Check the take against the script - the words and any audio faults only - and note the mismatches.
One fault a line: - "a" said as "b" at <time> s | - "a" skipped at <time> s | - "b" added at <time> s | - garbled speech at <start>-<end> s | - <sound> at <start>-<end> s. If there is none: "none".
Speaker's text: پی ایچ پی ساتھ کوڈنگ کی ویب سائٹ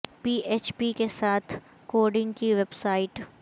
- "کے" added at 1.0 s